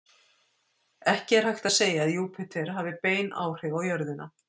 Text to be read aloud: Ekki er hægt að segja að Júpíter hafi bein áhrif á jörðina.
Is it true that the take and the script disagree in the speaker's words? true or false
false